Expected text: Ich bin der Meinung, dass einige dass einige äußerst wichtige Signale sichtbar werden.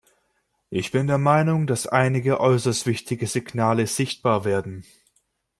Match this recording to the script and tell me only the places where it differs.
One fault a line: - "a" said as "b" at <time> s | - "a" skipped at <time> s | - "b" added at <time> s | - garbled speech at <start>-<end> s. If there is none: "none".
- "dass einige" skipped at 2.4 s